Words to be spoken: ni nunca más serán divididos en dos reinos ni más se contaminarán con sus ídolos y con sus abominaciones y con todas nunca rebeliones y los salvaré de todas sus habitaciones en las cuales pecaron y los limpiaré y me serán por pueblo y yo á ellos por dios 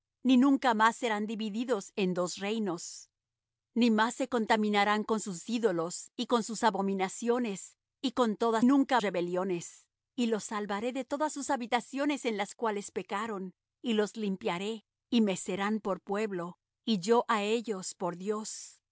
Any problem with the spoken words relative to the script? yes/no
no